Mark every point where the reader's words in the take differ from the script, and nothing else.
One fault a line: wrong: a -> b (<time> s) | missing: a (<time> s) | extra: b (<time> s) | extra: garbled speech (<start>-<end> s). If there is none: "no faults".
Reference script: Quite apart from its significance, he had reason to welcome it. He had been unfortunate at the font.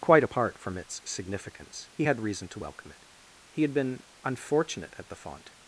no faults